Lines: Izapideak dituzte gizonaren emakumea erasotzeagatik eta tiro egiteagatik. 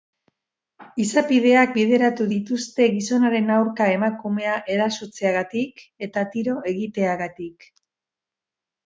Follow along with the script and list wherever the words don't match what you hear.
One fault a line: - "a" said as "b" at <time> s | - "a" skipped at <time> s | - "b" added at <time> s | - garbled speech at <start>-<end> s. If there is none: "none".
- "bideratu" added at 1.8 s
- "aurka" added at 3.5 s